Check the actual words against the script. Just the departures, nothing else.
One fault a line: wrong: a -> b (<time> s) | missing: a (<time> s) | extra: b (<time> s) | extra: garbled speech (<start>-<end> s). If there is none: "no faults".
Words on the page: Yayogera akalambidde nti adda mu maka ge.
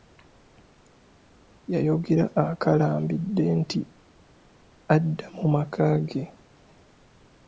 no faults